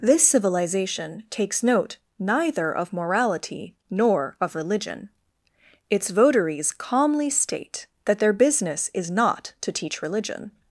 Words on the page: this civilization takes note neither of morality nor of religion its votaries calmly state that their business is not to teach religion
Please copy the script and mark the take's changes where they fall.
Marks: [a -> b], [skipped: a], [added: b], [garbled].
this civilization takes note neither of morality nor of religion its votaries calmly state that their business is not to teach religion